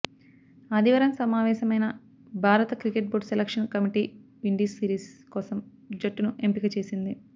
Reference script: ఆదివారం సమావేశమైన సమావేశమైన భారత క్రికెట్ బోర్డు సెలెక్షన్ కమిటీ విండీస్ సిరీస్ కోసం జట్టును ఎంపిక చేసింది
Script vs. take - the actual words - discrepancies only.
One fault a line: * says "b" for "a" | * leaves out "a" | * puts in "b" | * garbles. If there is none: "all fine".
* leaves out "సమావేశమైన"